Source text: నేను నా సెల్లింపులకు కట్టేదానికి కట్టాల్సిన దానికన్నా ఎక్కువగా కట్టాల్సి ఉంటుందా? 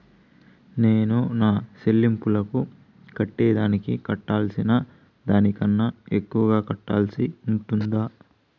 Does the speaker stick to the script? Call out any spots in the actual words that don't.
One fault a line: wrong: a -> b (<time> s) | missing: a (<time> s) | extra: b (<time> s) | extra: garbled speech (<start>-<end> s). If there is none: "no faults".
no faults